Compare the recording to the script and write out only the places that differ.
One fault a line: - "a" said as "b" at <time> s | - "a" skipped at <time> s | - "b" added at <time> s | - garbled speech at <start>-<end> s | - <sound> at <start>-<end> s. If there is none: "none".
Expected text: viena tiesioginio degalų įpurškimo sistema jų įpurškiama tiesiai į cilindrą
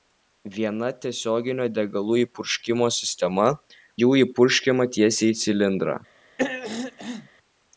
- throat clearing at 6.4-7.3 s